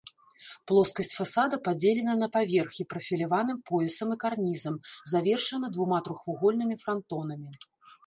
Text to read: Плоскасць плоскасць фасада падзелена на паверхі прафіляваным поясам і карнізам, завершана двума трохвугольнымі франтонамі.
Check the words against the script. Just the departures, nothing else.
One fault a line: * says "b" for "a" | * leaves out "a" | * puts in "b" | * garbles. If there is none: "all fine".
* leaves out "плоскасць"